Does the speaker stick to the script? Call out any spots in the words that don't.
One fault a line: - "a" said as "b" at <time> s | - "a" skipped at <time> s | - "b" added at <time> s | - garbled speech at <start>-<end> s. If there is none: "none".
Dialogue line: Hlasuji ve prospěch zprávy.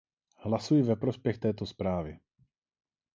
- "této" added at 1.4 s